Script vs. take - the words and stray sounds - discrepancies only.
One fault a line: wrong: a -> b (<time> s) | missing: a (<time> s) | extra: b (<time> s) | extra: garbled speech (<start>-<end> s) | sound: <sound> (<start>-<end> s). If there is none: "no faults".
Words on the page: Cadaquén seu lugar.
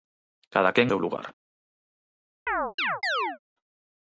sound: chirp (2.5-3.4 s)